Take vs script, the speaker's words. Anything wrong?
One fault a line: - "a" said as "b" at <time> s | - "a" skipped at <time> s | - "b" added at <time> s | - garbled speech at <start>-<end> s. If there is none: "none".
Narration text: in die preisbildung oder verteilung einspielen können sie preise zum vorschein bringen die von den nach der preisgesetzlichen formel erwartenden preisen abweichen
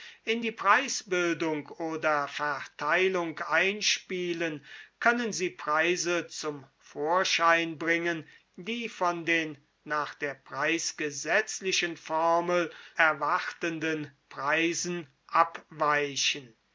none